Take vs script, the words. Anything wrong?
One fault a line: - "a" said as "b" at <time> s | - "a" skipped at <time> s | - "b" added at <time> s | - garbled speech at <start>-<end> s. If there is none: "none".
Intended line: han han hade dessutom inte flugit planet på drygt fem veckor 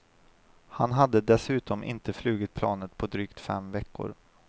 - "han" skipped at 0.9 s